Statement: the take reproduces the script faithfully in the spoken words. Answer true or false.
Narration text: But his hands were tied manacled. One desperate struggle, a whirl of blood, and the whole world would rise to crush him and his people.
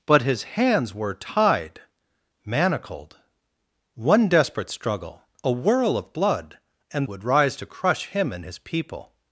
false